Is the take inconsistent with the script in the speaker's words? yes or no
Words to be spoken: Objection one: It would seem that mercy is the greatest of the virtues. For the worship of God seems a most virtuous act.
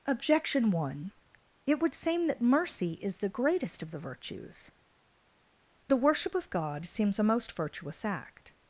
yes